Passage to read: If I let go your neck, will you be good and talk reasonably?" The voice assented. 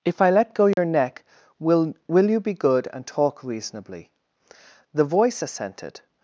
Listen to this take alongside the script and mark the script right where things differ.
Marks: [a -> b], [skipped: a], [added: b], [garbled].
If I let go your neck, will [added: will] you be good and talk reasonably?" The voice assented.